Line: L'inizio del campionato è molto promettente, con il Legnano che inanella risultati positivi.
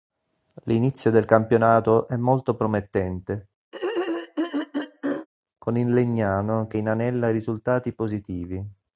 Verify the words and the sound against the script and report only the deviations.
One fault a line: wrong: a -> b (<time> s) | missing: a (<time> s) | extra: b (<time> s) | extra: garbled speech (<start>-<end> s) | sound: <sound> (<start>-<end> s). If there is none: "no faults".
sound: throat clearing (3.7-5.3 s)